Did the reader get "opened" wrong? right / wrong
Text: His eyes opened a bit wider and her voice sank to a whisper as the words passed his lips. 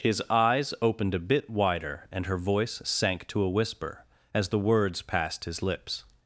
right